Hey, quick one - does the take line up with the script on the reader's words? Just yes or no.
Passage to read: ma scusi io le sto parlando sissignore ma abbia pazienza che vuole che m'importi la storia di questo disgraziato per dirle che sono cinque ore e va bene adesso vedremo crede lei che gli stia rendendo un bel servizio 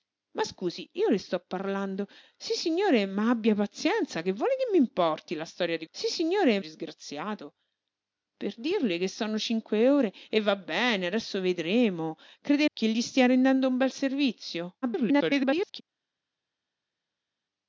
no